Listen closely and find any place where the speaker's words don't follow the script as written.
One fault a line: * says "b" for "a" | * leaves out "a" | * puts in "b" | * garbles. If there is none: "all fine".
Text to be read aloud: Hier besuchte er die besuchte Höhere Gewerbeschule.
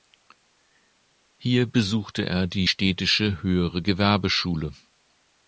* says "städtische" for "besuchte"